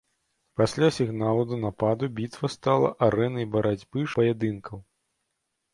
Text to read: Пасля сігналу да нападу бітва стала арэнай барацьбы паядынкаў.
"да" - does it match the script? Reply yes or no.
yes